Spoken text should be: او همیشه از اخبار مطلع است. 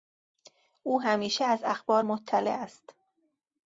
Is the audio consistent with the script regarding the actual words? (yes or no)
yes